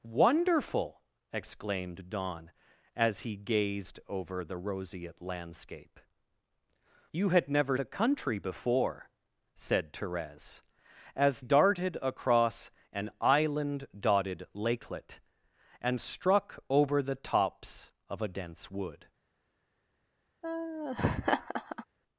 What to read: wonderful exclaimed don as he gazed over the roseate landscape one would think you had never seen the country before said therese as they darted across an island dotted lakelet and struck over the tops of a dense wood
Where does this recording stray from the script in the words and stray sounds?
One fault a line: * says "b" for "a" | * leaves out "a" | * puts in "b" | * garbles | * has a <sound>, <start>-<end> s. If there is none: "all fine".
* leaves out "one would think"
* leaves out "seen"
* leaves out "they"
* has a laugh, 20.4-21.8 s